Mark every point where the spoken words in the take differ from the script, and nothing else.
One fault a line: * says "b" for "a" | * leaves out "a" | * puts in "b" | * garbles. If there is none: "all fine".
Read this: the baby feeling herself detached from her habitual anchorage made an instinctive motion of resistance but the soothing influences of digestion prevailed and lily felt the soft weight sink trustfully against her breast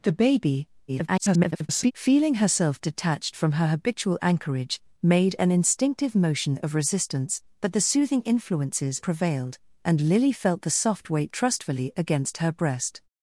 * garbles
* leaves out "of digestion"
* leaves out "sink"